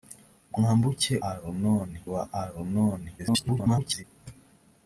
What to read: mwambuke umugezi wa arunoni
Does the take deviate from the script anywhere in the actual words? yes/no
yes